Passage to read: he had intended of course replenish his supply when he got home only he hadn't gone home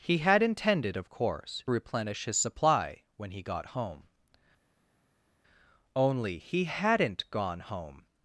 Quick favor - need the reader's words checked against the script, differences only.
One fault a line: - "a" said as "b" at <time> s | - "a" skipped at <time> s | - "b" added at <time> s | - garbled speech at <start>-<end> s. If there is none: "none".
none